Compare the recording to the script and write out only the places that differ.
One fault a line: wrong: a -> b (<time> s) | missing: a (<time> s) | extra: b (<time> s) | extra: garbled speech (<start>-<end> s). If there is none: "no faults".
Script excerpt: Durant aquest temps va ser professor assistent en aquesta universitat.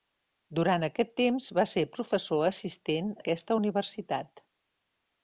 missing: en (3.1 s)